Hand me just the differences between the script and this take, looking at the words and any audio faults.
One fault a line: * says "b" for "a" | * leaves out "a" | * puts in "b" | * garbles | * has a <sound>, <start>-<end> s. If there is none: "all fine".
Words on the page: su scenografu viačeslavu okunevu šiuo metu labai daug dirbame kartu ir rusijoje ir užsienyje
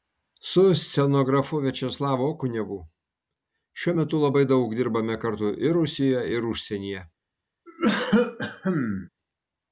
* has a cough, 7.7-9.1 s